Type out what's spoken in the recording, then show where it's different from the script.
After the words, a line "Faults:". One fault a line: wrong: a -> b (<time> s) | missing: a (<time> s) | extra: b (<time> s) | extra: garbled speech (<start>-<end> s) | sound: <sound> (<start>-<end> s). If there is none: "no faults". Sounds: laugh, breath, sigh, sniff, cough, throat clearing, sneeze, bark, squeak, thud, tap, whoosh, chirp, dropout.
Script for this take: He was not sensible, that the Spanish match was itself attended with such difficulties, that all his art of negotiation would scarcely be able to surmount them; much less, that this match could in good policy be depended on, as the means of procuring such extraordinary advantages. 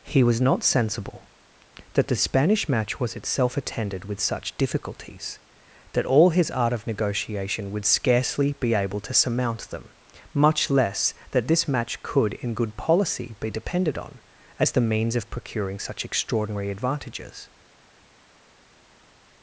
He was not sensible, that the Spanish match was itself attended with such difficulties, that all his art of negotiation would scarcely be able to surmount them; much less, that this match could in good policy be depended on, as the means of procuring such extraordinary advantages.
Faults:
no faults